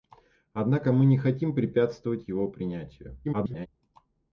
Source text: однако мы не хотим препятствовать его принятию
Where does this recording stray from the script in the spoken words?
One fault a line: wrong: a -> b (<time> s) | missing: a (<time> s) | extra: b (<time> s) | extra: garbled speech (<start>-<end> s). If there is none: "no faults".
extra: garbled speech (3.2-3.7 s)